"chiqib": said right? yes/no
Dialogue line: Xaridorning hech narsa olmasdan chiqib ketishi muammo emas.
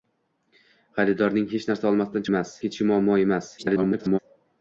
no